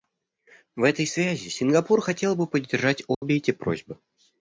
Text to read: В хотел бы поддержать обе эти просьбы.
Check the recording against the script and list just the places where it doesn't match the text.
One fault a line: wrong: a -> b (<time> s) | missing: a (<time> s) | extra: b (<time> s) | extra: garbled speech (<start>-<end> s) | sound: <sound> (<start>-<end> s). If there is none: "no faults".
extra: этой связи Сингапур (0.8 s)
sound: dropout (3.1-3.2 s)